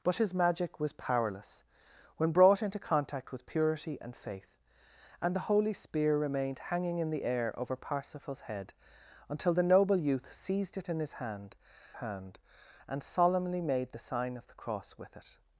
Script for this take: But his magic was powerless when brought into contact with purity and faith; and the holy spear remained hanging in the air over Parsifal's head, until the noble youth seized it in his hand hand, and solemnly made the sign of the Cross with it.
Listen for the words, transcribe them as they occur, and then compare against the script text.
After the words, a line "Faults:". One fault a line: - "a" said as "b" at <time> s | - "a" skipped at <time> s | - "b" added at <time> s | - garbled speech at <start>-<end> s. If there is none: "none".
But his magic was powerless when brought into contact with purity and faith; and the holy spear remained hanging in the air over Parsifal's head, until the noble youth seized it in his hand hand, and solemnly made the sign of the Cross with it.
Faults:
none